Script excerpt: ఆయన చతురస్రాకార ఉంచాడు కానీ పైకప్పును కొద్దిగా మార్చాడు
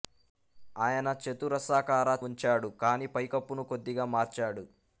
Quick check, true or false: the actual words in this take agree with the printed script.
true